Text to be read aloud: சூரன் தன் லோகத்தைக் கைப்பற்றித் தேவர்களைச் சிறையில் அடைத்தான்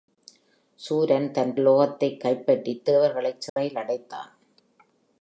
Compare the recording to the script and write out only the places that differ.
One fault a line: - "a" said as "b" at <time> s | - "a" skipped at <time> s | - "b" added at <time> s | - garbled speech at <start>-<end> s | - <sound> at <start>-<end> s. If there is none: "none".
- dropout at 3.5-3.6 s